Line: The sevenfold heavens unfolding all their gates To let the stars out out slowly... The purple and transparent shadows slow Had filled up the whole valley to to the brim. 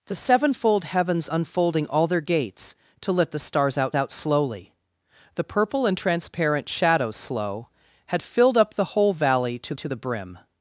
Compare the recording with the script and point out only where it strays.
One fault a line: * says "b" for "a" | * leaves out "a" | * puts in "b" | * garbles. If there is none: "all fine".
all fine